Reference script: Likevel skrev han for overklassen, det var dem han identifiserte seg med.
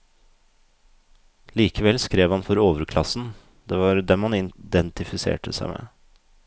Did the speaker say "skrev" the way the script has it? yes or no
yes